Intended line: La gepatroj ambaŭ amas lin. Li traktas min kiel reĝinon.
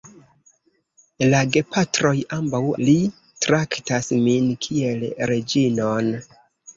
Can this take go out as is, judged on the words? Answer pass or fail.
fail